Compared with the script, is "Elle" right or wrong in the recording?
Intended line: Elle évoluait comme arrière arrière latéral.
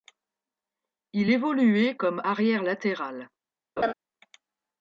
wrong